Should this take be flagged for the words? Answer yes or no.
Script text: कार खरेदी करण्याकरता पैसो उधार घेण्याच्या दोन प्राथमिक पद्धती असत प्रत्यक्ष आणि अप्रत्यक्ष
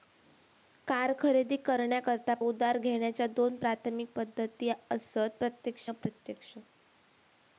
yes